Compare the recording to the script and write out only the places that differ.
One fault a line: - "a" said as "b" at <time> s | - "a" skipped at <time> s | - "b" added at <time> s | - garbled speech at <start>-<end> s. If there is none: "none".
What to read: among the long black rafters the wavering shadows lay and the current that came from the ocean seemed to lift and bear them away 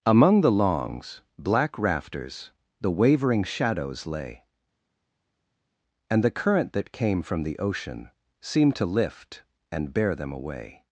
- "long" said as "longs" at 0.5 s